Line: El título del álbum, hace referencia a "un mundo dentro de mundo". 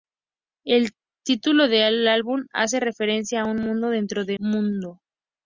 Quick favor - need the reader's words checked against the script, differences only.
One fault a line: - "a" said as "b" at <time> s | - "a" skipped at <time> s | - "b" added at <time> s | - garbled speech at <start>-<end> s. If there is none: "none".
none